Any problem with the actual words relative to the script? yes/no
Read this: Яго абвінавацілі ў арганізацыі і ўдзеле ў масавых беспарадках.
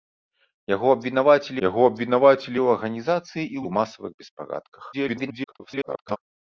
yes